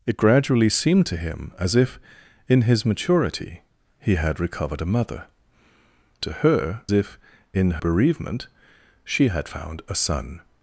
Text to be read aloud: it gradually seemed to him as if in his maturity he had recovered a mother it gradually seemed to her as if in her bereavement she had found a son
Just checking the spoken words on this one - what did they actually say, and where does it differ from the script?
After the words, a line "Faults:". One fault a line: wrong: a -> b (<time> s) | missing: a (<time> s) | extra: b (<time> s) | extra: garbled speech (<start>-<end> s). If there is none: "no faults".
it gradually seemed to him as if in his maturity he had recovered a mother to her if in bereavement she had found a son
Faults:
missing: it gradually seemed (5.3 s)
missing: as (6.8 s)
missing: her (7.8 s)